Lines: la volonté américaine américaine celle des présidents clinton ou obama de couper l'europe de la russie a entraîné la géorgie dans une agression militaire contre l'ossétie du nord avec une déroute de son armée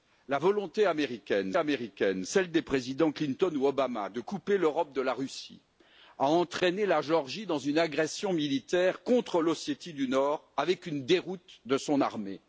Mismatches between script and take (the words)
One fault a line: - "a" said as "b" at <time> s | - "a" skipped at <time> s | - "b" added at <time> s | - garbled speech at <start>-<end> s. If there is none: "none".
none